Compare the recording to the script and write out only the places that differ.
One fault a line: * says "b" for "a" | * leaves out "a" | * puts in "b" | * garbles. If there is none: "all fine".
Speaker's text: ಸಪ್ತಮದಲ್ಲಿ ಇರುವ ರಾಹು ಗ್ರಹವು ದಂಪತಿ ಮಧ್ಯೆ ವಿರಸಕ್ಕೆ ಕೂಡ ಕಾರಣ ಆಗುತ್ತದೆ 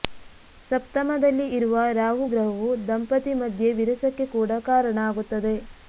all fine